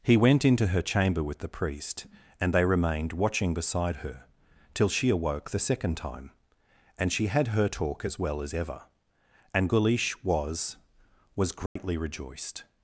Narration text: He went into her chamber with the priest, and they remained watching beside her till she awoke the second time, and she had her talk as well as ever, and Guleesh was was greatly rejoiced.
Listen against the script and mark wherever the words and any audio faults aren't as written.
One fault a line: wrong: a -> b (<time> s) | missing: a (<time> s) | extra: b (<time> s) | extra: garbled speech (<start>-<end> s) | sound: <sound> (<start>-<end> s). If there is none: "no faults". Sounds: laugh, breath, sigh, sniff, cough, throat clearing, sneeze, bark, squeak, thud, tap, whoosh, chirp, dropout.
sound: dropout (11.7-11.8 s)